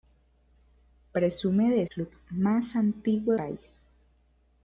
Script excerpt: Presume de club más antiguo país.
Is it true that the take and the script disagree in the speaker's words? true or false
false